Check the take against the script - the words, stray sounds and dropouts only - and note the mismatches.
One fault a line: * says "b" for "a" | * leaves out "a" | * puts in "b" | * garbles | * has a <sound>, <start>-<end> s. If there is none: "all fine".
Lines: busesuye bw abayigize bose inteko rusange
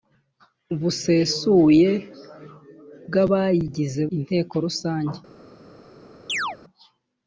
* leaves out "bose"
* has a chirp, 6.3-6.6 s